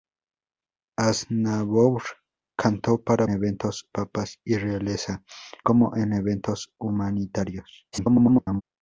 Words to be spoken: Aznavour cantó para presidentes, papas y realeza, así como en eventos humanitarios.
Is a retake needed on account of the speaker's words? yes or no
yes